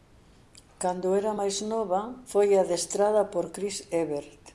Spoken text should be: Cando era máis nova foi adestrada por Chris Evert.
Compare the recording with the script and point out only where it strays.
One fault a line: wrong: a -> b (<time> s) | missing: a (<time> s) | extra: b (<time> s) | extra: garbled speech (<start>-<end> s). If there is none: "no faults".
no faults